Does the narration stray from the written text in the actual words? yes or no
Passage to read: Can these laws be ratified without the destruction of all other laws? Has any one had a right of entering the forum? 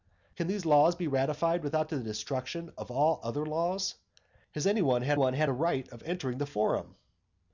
yes